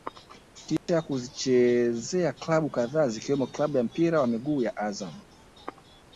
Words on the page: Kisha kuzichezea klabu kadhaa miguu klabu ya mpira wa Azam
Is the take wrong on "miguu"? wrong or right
wrong